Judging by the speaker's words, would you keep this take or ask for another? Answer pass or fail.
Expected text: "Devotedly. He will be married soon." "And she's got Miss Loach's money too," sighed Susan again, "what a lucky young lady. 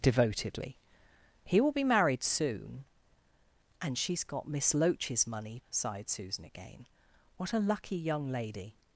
fail